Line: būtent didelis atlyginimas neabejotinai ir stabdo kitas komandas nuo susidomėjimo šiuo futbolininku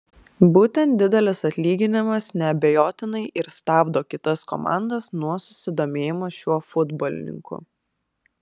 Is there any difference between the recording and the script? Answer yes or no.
no